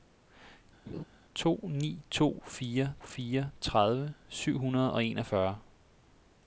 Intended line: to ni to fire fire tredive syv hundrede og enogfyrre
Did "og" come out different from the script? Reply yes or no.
no